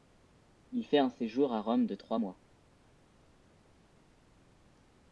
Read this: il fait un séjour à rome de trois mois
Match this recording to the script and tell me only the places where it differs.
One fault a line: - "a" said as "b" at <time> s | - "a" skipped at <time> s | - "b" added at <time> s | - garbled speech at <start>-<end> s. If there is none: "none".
none